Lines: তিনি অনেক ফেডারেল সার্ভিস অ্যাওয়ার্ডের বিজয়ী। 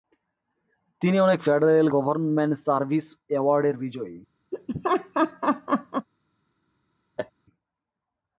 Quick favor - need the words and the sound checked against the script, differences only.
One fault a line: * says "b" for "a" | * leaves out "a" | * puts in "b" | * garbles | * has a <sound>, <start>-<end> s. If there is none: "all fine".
* puts in "গভর্নমেন্ট"
* has a laugh, 4.5-6.1 s
* has a laugh, 7.2-7.3 s